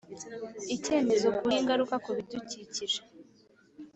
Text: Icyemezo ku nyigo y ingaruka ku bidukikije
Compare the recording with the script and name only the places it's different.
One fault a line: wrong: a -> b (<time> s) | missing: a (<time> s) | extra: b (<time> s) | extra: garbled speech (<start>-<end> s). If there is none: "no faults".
missing: nyigo (1.4 s)